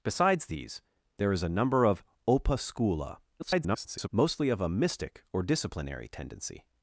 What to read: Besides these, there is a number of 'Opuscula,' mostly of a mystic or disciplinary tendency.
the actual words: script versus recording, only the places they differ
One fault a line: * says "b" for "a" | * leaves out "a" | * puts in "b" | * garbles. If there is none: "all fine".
* garbles